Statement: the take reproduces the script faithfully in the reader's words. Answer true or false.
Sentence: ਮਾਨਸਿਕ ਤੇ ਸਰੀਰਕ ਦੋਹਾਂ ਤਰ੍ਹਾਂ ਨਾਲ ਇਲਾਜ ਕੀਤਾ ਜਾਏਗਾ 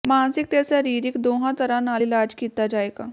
true